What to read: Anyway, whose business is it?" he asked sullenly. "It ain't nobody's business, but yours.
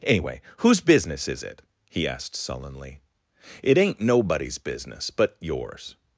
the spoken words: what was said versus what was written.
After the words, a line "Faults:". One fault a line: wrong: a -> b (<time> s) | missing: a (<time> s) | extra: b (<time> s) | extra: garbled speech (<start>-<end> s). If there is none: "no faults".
Anyway, whose business is it?" he asked sullenly. "It ain't nobody's business, but yours.
Faults:
no faults